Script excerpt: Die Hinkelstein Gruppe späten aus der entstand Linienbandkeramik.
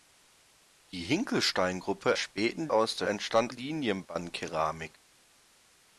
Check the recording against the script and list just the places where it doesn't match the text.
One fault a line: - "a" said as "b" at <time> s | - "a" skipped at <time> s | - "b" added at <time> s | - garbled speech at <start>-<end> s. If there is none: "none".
none